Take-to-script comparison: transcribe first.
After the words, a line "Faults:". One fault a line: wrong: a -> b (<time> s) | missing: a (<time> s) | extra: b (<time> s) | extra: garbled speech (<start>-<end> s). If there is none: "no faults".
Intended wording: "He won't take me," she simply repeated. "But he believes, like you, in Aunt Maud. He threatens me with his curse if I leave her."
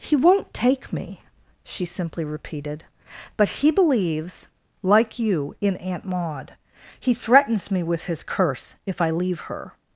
"He won't take me," she simply repeated. "But he believes, like you, in Aunt Maud. He threatens me with his curse if I leave her."
Faults:
no faults